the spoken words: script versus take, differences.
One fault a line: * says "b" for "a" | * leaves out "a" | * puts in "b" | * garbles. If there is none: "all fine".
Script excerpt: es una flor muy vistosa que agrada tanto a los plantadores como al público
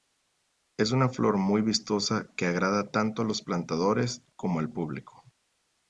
all fine